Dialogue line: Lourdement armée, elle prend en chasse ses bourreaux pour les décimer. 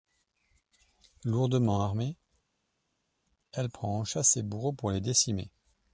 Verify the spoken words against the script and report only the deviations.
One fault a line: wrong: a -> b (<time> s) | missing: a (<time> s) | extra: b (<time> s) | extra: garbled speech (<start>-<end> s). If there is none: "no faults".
no faults